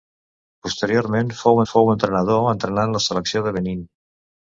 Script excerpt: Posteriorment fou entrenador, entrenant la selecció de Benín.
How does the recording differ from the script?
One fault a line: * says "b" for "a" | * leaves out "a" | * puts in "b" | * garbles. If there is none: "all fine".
* puts in "fou"